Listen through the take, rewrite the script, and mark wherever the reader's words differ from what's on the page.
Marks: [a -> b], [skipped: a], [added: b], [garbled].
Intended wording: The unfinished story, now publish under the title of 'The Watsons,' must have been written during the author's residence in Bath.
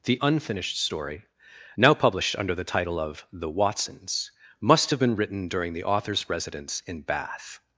The unfinished story, now [publish -> published] under the title of 'The Watsons,' must have been written during the author's residence in Bath.